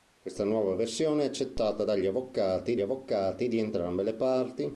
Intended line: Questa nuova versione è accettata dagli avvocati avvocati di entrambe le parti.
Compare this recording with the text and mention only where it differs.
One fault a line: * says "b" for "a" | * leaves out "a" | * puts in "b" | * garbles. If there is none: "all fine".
all fine